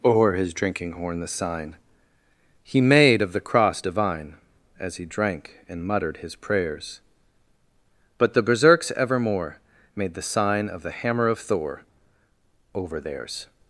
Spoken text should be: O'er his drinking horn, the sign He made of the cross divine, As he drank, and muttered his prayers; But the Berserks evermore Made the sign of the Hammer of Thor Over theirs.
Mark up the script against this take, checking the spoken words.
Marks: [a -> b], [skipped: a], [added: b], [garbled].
O'er his drinking horn, the sign He made of the cross divine, As he drank, and muttered his prayers; But the Berserks evermore Made the sign of the Hammer of Thor Over theirs.